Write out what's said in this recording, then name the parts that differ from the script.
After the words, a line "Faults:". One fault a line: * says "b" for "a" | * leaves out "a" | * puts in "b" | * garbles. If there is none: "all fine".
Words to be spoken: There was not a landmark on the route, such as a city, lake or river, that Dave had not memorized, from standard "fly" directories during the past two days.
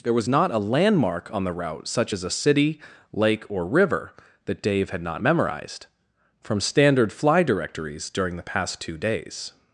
There was not a landmark on the route, such as a city, lake or river, that Dave had not memorized, from standard "fly" directories during the past two days.
Faults:
all fine